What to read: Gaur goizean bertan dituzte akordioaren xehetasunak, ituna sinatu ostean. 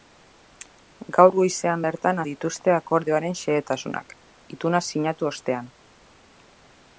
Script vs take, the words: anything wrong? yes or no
no